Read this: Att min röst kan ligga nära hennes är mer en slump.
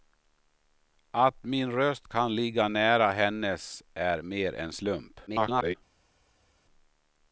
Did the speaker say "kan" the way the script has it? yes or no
yes